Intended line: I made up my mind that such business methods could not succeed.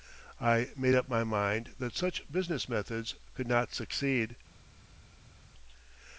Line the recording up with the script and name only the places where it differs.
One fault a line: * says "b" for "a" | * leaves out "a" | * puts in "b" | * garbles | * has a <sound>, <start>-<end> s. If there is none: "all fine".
all fine